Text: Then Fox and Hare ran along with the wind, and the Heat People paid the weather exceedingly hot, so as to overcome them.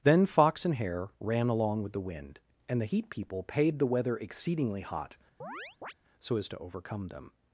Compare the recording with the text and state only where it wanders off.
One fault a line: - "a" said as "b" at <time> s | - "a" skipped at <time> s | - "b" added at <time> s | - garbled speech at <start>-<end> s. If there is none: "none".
none